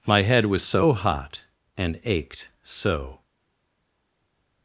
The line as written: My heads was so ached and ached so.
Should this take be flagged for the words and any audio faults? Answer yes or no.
yes